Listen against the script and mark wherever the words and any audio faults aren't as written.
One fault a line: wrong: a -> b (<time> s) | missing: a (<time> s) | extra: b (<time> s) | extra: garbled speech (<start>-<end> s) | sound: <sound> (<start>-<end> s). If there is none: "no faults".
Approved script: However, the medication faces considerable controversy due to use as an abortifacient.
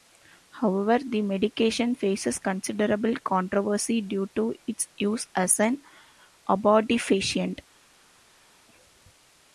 extra: its (4.7 s)